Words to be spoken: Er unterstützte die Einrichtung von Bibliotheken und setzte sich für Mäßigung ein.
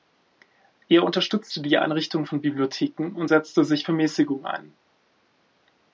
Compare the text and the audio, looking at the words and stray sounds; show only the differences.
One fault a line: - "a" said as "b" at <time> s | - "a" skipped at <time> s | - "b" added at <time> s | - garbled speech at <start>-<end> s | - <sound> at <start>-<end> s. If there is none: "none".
none